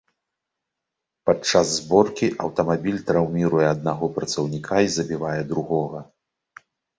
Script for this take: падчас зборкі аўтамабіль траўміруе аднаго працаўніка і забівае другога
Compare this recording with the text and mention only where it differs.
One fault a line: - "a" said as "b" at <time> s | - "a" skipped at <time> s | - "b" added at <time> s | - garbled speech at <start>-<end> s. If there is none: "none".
none